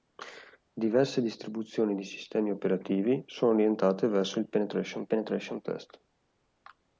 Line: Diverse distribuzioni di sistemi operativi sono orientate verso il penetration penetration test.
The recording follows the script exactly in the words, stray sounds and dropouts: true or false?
true